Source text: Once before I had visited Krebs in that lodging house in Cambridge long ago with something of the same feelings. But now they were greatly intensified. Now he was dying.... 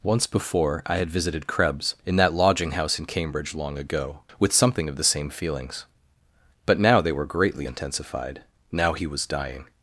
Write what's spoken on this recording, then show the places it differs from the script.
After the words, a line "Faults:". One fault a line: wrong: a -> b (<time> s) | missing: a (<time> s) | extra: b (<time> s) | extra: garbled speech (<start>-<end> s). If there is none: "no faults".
Once before I had visited Krebs in that lodging house in Cambridge long ago with something of the same feelings. But now they were greatly intensified. Now he was dying....
Faults:
no faults